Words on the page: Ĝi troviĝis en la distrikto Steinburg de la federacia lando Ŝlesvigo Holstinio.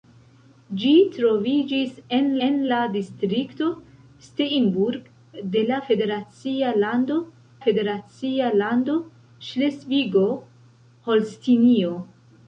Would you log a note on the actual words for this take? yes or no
yes